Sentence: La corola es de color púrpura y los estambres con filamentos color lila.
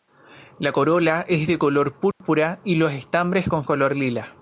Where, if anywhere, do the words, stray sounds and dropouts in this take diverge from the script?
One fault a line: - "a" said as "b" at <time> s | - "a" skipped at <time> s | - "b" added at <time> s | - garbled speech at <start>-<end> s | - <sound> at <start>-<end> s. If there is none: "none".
- dropout at 2.1-2.2 s
- "filamentos" skipped at 3.7 s